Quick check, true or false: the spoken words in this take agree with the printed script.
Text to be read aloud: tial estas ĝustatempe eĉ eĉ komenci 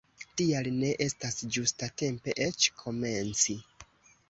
false